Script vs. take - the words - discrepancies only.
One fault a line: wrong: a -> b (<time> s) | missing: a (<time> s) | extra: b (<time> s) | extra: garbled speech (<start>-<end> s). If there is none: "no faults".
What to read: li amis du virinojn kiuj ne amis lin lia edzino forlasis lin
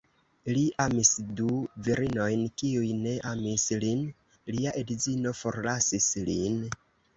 no faults